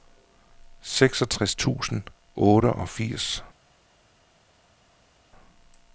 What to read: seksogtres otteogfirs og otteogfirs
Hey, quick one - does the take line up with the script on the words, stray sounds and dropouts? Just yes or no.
no